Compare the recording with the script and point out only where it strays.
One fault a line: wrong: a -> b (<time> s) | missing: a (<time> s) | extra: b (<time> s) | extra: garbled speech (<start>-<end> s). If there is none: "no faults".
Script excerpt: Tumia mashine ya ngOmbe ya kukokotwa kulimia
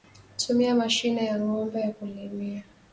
missing: kukokotwa (1.9 s)